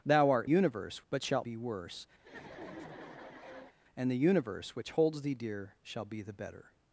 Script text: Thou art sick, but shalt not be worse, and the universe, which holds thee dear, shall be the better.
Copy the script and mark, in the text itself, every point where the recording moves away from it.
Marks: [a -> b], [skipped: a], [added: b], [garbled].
Thou art [sick, -> universe] but shalt [skipped: not] be worse, and the universe, which holds thee dear, shall be the better.